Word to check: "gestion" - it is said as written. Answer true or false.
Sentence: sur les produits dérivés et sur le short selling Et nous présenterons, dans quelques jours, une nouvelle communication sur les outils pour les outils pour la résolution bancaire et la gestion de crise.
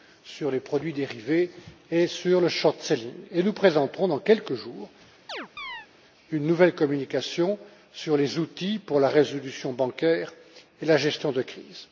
true